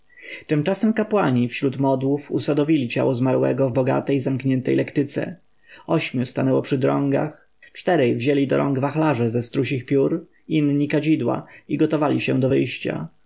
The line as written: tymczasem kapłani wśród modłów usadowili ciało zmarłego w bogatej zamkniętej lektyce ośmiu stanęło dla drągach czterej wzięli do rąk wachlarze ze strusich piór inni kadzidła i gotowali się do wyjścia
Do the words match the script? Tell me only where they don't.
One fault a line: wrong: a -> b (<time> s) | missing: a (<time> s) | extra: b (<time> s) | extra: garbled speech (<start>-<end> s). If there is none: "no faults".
wrong: dla -> przy (6.6 s)